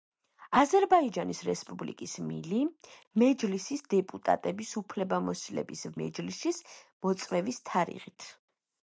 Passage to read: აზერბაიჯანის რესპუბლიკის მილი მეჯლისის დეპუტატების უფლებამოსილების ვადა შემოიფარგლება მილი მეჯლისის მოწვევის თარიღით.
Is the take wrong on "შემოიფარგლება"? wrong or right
wrong